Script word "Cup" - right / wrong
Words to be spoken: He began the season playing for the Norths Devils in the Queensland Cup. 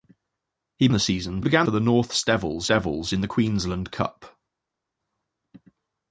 right